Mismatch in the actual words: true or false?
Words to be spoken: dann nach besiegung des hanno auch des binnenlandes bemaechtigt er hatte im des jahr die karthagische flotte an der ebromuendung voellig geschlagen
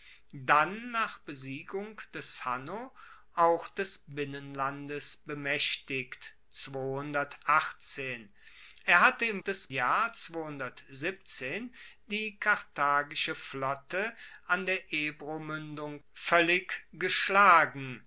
false